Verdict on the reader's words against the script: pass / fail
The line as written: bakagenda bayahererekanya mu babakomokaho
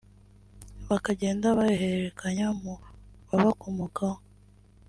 pass